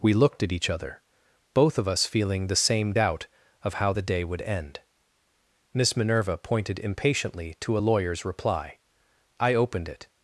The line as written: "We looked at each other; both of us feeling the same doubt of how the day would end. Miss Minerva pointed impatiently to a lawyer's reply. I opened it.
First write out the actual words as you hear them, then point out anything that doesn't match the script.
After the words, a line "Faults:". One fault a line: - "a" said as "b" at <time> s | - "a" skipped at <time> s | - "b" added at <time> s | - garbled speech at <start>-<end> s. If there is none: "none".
"We looked at each other; both of us feeling the same doubt of how the day would end. Miss Minerva pointed impatiently to a lawyer's reply. I opened it.
Faults:
none